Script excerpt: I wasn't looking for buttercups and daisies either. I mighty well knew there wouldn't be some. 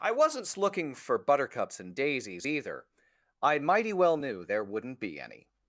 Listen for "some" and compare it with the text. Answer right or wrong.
wrong